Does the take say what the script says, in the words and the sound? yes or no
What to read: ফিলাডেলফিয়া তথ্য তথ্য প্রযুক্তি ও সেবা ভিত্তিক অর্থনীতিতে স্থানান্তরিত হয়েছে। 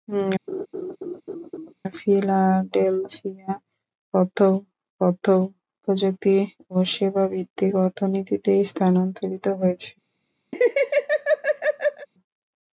no